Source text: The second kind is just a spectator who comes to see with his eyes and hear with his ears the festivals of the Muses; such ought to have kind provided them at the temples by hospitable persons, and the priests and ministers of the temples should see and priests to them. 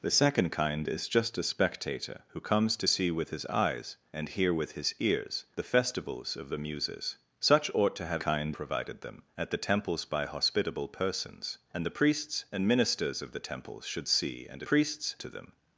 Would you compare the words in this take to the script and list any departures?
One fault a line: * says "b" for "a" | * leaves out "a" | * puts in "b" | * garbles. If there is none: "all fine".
all fine